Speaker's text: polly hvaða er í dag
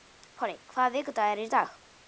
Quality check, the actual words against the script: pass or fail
fail